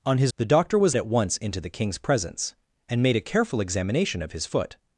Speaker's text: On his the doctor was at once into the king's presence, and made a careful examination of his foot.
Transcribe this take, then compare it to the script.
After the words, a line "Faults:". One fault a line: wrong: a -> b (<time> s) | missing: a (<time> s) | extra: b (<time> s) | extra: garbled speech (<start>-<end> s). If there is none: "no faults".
On his the doctor was at once into the king's presence, and made a careful examination of his foot.
Faults:
no faults